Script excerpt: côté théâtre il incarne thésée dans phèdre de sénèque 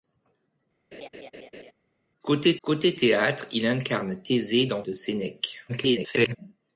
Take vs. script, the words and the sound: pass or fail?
fail